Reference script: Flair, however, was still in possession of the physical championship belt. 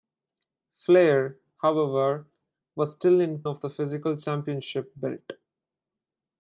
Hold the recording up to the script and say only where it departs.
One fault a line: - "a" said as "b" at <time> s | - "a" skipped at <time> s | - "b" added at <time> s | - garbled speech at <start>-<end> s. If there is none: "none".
- "possession" skipped at 3.4 s